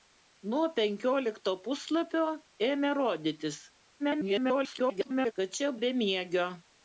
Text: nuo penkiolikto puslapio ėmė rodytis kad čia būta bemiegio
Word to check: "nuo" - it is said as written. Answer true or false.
true